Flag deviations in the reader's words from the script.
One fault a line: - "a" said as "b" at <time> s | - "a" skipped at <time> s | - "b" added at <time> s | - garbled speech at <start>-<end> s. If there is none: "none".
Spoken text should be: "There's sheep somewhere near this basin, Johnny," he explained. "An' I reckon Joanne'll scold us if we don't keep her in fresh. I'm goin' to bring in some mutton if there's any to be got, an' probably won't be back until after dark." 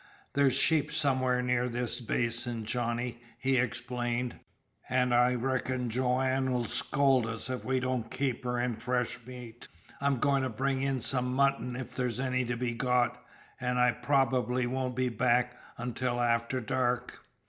- "meat" added at 9.3 s
- "I" added at 13.8 s